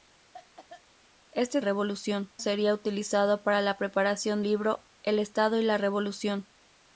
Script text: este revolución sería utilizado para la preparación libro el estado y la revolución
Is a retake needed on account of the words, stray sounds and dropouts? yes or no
yes